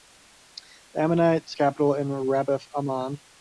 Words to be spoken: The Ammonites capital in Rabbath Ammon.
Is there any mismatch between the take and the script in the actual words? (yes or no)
no